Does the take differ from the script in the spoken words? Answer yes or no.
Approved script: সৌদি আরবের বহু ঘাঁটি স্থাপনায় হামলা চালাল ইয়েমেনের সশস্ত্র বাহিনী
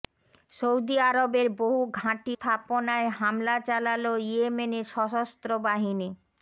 no